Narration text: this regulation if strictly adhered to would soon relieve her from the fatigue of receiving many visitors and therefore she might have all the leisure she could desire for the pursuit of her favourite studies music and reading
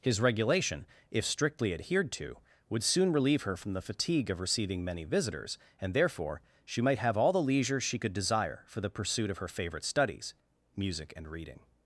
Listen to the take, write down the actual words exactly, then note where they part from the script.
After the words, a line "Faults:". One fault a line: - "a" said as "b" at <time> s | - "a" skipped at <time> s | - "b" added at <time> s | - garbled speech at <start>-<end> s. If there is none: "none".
his regulation if strictly adhered to would soon relieve her from the fatigue of receiving many visitors and therefore she might have all the leisure she could desire for the pursuit of her favourite studies music and reading
Faults:
- "this" said as "his" at 0.0 s